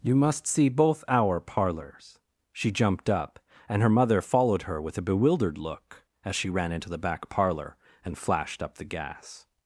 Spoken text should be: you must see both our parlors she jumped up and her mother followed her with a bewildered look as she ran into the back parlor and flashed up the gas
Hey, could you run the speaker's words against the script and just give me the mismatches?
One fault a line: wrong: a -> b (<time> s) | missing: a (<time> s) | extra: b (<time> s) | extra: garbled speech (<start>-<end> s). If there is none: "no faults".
no faults